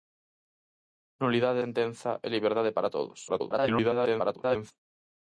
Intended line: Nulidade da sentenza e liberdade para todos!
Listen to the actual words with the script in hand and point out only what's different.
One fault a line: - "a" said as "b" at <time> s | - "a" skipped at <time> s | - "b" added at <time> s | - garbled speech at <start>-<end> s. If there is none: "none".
- "da" skipped at 1.6 s
- garbled speech at 3.3-4.7 s